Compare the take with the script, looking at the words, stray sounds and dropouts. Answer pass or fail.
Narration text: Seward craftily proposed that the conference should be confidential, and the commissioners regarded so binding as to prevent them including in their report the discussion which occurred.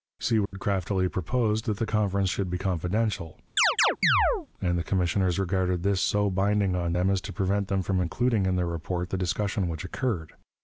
fail